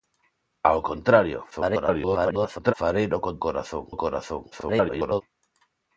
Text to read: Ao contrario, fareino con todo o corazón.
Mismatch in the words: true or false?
true